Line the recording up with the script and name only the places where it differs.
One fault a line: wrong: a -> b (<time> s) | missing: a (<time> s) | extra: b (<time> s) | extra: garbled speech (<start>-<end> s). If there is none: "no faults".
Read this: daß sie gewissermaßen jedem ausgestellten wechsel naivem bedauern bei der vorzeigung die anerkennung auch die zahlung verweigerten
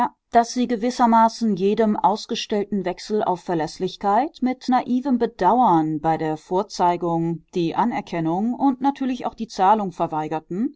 extra: auf verläßlichkeit mit (3.2 s)
extra: und natürlich (8.5 s)